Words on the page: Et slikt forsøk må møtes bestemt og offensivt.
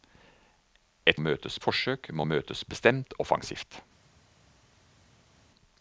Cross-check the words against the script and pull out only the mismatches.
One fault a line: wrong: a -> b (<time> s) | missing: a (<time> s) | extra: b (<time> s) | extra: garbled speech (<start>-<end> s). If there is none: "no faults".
wrong: slikt -> møtes (1.2 s)
missing: og (3.1 s)